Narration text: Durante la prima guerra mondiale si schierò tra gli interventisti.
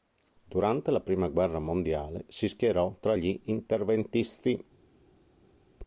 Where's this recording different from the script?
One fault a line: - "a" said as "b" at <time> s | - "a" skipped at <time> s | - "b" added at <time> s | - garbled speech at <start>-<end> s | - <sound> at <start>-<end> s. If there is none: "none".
none